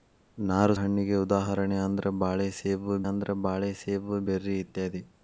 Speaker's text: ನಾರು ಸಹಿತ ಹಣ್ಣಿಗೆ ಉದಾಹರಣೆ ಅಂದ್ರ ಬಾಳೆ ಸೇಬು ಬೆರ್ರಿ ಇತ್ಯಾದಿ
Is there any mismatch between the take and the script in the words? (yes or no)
yes